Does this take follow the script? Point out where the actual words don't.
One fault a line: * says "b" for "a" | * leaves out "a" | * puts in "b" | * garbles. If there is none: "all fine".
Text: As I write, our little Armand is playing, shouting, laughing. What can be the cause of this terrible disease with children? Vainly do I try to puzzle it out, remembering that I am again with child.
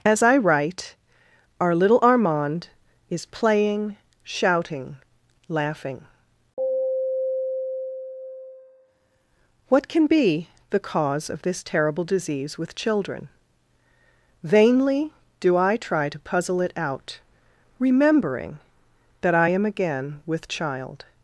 all fine